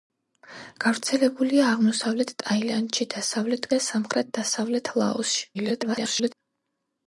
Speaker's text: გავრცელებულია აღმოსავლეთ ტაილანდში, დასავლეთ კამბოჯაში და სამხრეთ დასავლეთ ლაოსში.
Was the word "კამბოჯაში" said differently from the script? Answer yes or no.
yes